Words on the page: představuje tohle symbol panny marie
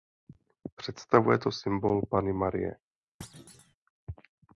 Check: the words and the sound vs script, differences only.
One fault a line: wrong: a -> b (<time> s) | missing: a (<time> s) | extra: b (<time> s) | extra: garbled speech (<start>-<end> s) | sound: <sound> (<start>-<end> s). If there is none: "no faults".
wrong: tohle -> to (1.4 s)
sound: thud (3.2-3.8 s)